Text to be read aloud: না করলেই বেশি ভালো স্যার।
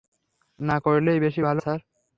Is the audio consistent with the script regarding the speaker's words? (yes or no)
yes